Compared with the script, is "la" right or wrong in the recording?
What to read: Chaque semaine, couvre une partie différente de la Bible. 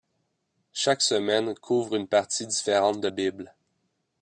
wrong